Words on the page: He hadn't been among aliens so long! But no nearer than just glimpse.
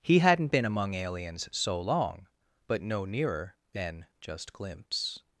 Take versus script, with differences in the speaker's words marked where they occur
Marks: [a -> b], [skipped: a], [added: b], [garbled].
He hadn't been among aliens so long! But no nearer than just glimpse.